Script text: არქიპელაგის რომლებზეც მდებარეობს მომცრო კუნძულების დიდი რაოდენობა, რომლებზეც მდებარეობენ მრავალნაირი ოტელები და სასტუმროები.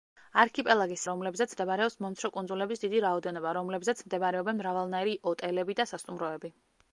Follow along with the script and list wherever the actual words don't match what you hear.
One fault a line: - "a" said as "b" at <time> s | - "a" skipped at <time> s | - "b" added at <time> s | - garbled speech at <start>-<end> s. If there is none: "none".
none